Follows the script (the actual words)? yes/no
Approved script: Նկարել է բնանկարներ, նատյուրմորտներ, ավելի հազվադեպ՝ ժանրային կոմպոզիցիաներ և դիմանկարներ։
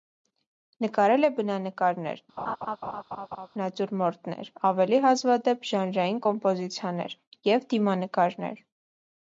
yes